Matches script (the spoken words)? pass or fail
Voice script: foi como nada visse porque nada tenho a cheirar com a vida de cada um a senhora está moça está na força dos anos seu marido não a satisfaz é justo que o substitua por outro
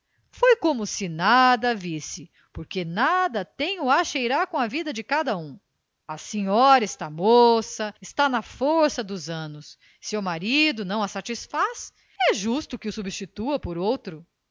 fail